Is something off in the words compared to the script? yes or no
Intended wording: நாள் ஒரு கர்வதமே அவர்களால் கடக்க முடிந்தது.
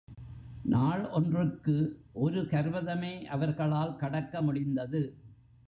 yes